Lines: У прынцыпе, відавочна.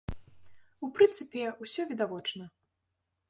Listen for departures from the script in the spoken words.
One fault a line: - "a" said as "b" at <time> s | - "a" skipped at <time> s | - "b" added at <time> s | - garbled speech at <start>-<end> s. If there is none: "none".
- "усё" added at 1.6 s